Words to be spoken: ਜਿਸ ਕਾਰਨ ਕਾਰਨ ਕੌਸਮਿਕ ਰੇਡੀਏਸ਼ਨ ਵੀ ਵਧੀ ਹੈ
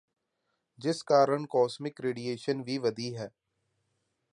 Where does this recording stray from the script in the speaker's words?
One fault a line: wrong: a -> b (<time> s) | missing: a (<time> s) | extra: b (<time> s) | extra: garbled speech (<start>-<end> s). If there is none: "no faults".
missing: ਕਾਰਨ (1.4 s)